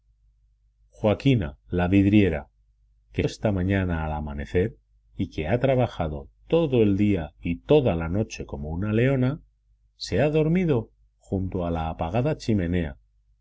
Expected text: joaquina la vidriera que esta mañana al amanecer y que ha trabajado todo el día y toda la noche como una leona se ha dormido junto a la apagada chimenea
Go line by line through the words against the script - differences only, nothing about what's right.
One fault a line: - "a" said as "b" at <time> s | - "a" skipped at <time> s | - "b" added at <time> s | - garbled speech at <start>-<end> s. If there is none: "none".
none